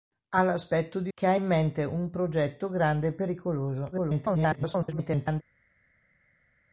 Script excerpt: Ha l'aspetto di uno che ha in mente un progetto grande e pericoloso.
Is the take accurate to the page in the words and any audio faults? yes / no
no